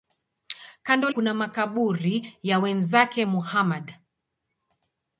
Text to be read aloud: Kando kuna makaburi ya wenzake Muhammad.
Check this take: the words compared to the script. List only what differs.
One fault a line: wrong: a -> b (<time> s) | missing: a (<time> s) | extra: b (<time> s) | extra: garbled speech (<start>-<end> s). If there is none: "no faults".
no faults